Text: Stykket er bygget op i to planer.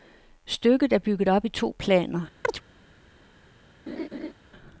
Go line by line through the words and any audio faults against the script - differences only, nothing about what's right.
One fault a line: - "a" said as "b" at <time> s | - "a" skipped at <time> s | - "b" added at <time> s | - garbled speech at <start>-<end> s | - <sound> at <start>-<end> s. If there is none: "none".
- chirp at 2.4-2.6 s
- laugh at 3.9-4.3 s